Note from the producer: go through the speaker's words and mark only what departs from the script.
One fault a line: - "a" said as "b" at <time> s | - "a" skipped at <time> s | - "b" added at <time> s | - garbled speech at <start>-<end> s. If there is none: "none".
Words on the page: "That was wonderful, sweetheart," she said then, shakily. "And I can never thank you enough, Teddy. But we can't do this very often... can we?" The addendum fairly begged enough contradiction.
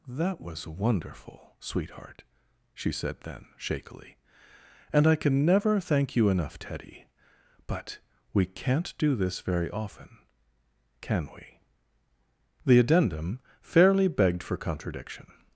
- "enough" said as "for" at 14.4 s